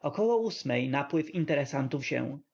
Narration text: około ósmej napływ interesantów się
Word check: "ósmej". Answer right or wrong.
right